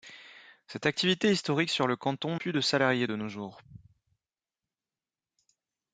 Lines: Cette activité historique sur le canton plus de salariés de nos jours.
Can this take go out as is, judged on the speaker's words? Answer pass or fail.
pass